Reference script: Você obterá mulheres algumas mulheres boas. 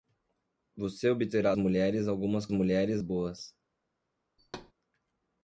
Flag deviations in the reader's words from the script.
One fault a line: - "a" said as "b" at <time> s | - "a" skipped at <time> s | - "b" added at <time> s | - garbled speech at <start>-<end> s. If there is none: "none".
none